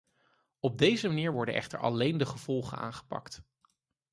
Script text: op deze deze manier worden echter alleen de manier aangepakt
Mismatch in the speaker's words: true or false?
true